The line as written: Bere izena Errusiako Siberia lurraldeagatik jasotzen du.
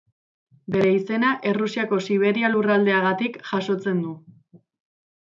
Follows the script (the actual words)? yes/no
yes